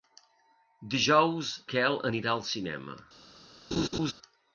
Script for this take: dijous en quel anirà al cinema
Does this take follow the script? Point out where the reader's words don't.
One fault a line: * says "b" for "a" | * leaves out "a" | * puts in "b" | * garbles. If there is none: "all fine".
* leaves out "en"